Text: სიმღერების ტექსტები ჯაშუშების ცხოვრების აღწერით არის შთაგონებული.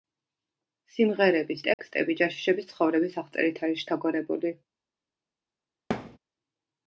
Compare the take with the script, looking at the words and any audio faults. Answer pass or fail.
fail